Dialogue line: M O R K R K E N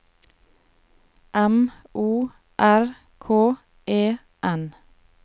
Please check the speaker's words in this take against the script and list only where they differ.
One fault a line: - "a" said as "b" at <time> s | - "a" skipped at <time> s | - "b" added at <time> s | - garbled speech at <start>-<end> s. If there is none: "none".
- "R K" skipped at 3.5 s